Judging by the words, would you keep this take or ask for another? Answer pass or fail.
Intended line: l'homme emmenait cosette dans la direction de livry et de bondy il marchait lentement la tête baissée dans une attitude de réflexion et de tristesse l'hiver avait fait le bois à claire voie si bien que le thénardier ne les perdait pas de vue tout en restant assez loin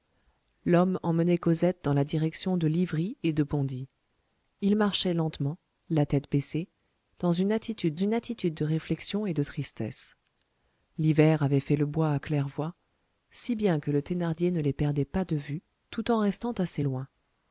fail